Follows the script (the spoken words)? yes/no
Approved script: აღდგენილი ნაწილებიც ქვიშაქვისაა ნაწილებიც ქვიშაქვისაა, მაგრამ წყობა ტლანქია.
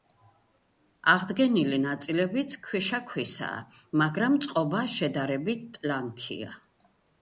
no